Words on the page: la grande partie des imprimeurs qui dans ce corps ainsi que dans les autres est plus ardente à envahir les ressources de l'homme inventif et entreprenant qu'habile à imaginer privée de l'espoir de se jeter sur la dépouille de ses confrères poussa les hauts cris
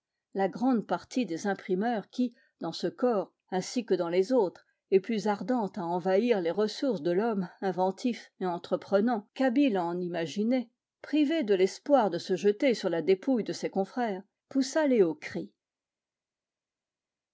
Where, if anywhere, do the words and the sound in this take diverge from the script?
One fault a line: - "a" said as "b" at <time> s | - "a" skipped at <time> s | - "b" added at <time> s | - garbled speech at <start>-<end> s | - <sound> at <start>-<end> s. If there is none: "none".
- "en" added at 9.8 s